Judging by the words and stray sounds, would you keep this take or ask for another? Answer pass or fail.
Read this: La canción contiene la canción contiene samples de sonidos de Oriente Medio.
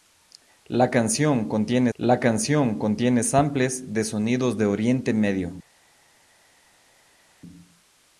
pass